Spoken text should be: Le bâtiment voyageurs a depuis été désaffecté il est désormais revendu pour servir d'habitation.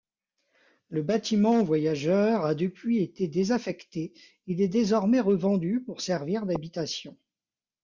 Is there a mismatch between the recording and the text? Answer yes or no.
no